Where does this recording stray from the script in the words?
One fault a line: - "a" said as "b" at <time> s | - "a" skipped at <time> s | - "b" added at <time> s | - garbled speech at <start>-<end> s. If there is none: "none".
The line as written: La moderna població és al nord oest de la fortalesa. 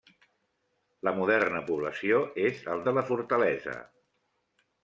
- "nord oest" skipped at 2.8 s